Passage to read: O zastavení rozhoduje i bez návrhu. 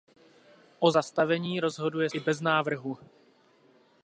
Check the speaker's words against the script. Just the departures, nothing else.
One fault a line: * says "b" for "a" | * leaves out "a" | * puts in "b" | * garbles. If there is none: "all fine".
all fine